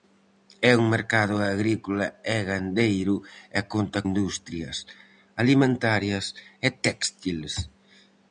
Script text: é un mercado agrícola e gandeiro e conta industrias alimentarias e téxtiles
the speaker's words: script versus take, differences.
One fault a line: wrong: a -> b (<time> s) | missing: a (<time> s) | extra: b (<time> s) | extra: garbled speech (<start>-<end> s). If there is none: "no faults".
no faults